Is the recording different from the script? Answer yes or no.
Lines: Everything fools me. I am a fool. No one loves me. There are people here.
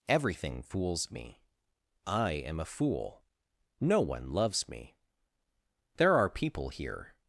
no